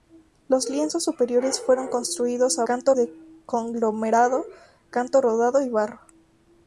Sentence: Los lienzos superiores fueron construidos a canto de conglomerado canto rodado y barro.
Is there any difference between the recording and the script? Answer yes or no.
no